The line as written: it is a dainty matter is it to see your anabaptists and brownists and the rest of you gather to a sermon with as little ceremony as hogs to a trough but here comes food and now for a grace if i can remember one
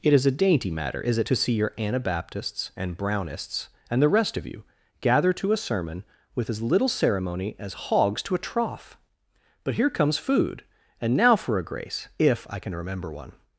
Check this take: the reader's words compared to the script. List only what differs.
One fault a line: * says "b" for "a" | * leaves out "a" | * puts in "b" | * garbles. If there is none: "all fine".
all fine